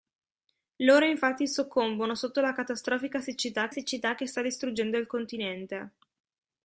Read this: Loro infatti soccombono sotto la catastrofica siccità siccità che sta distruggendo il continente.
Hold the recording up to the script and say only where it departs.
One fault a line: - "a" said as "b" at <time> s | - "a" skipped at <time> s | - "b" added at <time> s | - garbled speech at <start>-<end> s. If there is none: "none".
none